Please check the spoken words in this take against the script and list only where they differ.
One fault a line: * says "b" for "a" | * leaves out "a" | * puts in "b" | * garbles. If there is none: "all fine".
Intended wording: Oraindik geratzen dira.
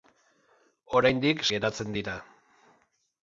all fine